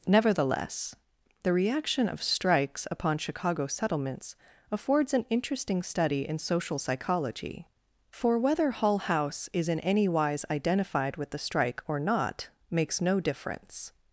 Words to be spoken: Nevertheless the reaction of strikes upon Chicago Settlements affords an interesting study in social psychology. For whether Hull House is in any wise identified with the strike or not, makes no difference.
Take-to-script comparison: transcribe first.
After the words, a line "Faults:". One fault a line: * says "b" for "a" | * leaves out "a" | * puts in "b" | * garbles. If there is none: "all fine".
Nevertheless the reaction of strikes upon Chicago Settlements affords an interesting study in social psychology. For whether Hull House is in any wise identified with the strike or not, makes no difference.
Faults:
all fine